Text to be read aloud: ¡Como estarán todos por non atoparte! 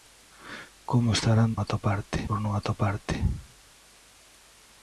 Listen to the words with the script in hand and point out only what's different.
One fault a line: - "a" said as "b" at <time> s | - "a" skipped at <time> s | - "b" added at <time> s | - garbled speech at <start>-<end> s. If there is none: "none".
- "todos" said as "atoparte" at 1.6 s